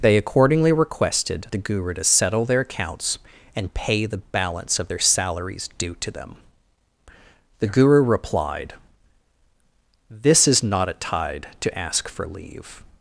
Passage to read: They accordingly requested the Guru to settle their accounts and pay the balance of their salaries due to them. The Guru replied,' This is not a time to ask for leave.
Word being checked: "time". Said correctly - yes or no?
no